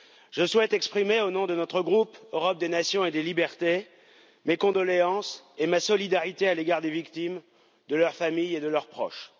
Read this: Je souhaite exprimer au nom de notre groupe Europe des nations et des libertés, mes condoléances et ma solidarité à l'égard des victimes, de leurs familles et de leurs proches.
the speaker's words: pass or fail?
pass